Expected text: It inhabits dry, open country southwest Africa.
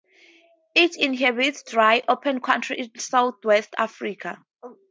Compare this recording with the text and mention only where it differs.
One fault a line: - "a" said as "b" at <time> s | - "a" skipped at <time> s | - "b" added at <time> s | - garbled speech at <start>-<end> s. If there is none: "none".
- "in" added at 2.8 s